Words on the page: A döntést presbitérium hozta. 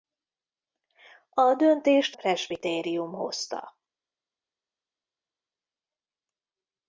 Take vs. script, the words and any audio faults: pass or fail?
pass